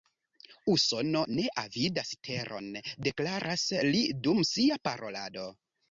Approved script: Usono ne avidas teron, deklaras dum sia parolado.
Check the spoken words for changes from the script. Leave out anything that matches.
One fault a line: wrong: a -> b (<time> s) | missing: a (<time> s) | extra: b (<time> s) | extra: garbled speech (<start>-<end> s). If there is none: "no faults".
extra: li (3.9 s)